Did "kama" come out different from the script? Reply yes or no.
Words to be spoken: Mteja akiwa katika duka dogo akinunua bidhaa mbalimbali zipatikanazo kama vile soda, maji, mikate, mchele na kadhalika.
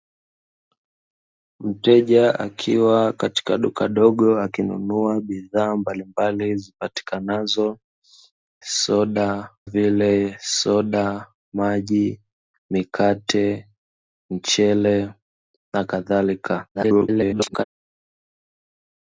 yes